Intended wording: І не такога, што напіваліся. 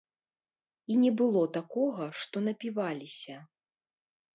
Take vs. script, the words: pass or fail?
fail